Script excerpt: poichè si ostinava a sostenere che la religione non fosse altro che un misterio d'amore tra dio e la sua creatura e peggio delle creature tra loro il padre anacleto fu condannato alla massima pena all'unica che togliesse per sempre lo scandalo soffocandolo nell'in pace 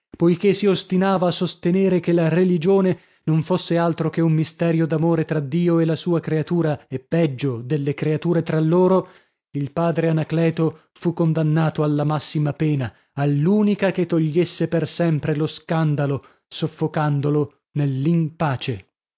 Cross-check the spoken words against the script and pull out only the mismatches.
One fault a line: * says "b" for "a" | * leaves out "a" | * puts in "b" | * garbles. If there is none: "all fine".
all fine